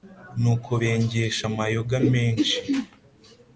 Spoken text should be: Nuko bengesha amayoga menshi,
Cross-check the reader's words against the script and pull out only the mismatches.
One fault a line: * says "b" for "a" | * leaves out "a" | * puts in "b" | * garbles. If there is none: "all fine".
all fine